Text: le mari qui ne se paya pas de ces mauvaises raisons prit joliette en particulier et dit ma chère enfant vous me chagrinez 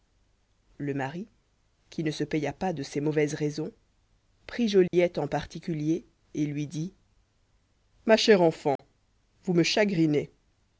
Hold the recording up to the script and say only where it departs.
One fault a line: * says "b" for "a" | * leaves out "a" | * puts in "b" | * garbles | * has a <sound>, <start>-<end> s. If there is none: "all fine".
* has a dropout, 4.9-4.9 s
* puts in "lui"
* has a dropout, 8.8-8.8 s